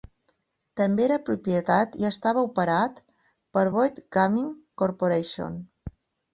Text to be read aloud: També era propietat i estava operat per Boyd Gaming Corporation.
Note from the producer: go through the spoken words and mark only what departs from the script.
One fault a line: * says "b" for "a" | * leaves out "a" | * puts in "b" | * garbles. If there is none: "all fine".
all fine